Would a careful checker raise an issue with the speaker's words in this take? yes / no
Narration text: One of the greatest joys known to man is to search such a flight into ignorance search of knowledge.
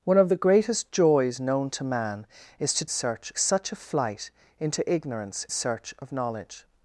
no